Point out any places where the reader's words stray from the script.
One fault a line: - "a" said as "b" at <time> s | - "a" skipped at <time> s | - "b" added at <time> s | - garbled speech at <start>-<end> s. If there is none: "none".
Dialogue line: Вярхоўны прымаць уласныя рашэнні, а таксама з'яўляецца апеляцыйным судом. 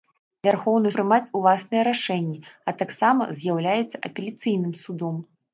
none